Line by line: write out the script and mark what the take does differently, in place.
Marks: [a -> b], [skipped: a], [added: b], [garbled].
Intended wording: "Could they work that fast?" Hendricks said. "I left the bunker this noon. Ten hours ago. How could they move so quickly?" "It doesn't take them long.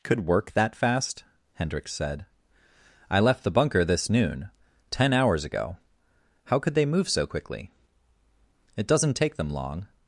"Could [skipped: they] work that fast?" Hendricks said. "I left the bunker this noon. Ten hours ago. How could they move so quickly?" "It doesn't take them long.